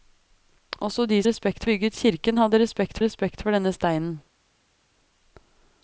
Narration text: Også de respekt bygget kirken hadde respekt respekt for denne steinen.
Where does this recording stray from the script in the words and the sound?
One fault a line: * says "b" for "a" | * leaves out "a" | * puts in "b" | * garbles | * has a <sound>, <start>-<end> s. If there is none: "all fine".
all fine